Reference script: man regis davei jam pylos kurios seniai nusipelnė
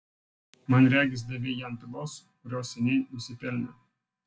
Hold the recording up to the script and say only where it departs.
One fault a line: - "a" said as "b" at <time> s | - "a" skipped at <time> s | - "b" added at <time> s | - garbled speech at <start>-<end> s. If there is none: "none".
none